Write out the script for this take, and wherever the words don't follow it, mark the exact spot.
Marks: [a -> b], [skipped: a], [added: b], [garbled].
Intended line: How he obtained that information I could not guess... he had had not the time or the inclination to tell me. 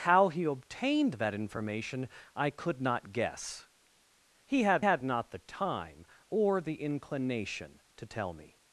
How he obtained that information I could not guess... he had had not the time or the inclination to tell me.